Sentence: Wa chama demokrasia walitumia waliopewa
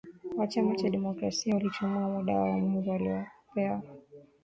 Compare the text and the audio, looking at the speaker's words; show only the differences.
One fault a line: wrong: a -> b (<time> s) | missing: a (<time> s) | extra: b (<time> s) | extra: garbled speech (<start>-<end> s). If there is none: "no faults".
extra: cha (0.7 s)
extra: muda wao mwingi (2.1 s)